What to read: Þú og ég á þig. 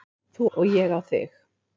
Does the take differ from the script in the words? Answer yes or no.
no